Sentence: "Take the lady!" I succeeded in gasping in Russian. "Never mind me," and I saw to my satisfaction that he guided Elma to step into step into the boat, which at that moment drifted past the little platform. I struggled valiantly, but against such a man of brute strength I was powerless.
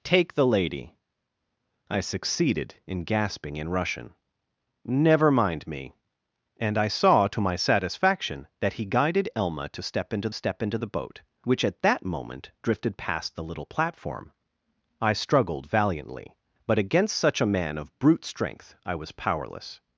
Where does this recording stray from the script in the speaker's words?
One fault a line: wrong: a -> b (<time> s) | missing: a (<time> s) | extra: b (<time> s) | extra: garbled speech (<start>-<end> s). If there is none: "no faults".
no faults